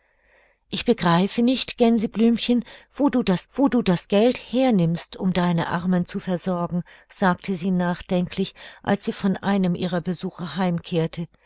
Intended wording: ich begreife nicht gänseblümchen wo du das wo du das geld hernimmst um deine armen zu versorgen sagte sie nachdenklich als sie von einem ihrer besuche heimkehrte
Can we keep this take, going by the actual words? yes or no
yes